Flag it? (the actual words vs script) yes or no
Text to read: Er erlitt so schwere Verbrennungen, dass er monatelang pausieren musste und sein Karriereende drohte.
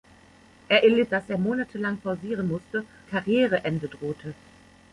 yes